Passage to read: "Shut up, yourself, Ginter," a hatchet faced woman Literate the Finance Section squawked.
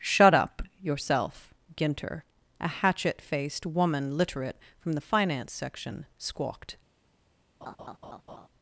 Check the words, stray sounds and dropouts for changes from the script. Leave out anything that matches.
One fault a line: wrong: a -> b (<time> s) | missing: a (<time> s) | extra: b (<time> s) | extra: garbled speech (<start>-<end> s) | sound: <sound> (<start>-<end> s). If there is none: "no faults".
extra: from (4.8 s)
sound: laugh (7.6-8.5 s)